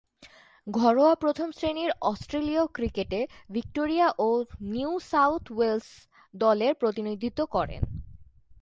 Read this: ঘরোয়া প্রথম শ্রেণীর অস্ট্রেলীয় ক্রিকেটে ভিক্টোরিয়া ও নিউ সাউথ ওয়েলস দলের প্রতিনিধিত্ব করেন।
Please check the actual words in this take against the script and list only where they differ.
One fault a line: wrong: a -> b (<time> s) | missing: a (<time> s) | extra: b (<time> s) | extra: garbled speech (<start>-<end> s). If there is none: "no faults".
no faults